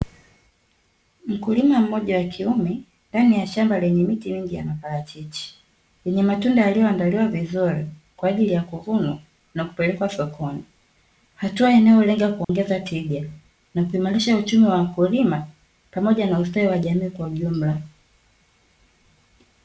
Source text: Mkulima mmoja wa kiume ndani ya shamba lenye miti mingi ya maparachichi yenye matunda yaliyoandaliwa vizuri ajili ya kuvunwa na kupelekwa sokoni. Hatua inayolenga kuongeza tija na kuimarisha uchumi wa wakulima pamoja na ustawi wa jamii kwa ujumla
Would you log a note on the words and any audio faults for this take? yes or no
yes